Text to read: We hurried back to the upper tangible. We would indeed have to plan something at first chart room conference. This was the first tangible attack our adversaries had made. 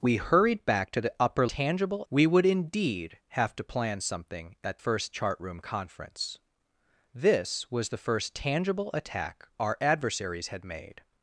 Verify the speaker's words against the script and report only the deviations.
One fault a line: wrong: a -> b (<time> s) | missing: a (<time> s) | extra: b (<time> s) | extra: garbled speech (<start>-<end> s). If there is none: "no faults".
no faults